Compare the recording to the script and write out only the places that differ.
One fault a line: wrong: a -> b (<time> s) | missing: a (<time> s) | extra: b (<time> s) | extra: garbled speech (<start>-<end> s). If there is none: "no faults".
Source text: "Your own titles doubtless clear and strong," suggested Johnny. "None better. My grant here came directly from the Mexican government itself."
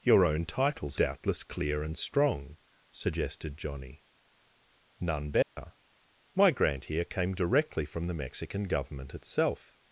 no faults